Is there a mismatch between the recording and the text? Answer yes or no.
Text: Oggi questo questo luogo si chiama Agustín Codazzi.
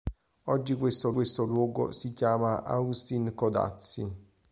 no